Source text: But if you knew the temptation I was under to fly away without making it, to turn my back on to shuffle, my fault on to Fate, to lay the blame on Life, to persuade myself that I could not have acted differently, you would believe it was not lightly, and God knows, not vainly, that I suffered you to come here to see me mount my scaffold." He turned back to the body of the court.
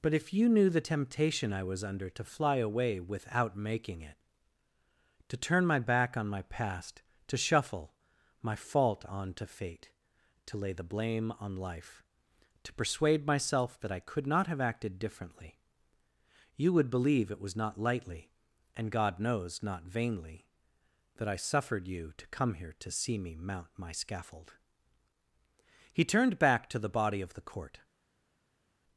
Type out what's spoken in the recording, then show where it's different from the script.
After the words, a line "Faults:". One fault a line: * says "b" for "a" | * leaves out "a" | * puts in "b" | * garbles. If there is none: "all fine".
But if you knew the temptation I was under to fly away without making it, to turn my back on my past, to shuffle, my fault on to Fate, to lay the blame on Life, to persuade myself that I could not have acted differently, you would believe it was not lightly, and God knows, not vainly, that I suffered you to come here to see me mount my scaffold." He turned back to the body of the court.
Faults:
* puts in "my past"